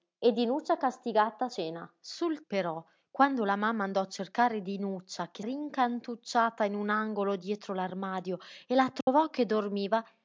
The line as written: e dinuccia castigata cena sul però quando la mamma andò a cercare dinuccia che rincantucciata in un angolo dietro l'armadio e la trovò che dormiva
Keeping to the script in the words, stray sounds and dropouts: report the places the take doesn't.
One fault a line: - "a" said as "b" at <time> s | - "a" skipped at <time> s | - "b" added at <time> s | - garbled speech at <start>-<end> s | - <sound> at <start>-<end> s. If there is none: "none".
- dropout at 9.0-9.1 s